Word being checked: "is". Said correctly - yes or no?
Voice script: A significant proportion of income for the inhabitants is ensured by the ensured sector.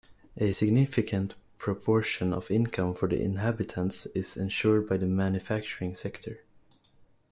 yes